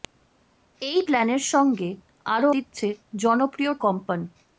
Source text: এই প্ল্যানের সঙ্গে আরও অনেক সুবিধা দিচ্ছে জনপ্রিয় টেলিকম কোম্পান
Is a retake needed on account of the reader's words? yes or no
yes